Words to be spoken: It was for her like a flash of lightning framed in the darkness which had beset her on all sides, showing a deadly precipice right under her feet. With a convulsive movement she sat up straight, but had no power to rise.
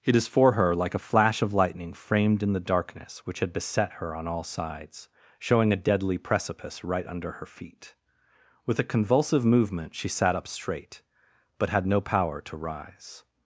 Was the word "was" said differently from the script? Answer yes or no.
yes